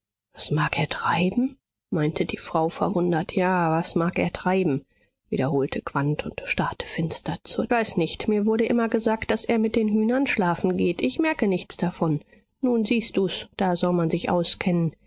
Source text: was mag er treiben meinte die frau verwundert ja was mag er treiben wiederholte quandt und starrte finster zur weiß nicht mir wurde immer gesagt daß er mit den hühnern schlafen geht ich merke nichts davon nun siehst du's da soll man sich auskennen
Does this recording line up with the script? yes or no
yes